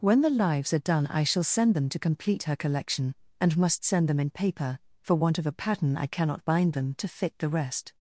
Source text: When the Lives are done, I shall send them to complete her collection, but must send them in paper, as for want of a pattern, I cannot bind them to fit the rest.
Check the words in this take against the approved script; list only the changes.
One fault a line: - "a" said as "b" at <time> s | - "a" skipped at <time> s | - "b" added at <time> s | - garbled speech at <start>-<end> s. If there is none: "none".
- "but" said as "and" at 3.4 s
- "as" skipped at 4.8 s